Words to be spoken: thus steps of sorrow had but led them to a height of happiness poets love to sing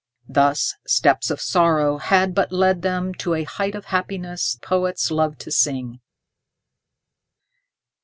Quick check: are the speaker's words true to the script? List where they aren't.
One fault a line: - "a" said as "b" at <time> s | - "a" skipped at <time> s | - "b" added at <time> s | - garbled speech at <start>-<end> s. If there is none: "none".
none